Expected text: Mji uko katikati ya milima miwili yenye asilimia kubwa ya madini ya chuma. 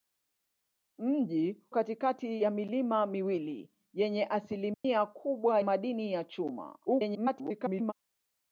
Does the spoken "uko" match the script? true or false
false